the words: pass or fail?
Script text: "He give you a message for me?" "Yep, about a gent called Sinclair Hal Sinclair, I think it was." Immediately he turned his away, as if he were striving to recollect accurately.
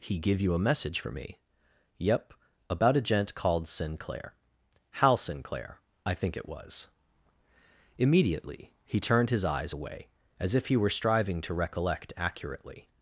fail